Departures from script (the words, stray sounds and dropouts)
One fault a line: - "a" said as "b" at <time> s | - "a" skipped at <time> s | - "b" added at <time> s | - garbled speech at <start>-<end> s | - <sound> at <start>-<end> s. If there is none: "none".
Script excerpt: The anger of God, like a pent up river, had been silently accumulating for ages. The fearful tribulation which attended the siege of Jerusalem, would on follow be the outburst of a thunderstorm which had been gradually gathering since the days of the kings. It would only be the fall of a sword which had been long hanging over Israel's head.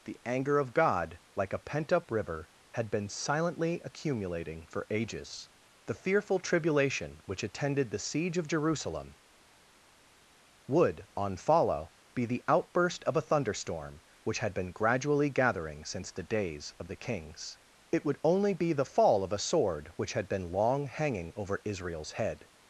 none